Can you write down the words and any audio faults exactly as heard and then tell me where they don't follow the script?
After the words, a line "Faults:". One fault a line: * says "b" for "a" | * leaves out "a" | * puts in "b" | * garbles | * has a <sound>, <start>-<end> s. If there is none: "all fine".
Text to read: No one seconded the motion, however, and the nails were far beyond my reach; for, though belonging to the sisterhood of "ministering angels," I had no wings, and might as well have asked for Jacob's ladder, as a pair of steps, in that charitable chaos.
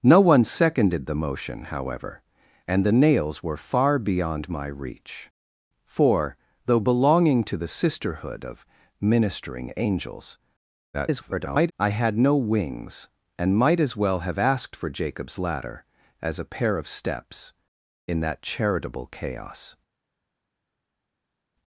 No one seconded the motion, however, and the nails were far beyond my reach; for, though belonging to the sisterhood of "ministering angels," [garbled] I had no wings, and might as well have asked for Jacob's ladder, as a pair of steps, in that charitable chaos.
Faults:
* garbles